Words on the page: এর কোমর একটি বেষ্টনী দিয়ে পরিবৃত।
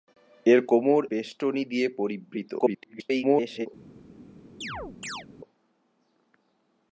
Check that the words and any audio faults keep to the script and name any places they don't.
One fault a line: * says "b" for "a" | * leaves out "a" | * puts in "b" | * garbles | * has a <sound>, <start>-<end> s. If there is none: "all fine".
* leaves out "একটি"
* garbles
* has a chirp, 4.6-5.3 s